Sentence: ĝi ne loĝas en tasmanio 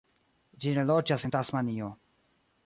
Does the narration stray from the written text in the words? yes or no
no